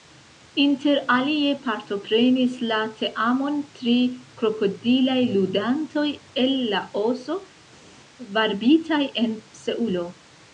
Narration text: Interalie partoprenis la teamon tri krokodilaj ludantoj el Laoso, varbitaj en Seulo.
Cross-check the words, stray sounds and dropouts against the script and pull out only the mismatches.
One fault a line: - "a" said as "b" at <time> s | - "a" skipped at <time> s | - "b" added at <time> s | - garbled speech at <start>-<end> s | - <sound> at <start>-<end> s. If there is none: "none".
none